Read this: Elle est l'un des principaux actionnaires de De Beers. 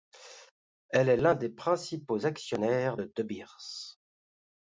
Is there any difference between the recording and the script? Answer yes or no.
no